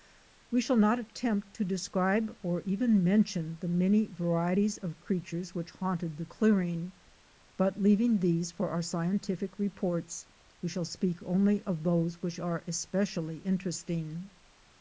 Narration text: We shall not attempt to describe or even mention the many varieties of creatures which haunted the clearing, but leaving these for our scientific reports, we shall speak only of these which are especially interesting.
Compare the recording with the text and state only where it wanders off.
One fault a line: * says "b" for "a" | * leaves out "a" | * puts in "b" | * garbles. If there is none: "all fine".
* says "those" for "these"